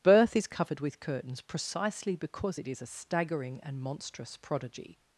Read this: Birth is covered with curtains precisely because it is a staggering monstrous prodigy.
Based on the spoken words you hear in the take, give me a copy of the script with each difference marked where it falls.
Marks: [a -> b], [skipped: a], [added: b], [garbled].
Birth is covered with curtains precisely because it is a staggering [added: and] monstrous prodigy.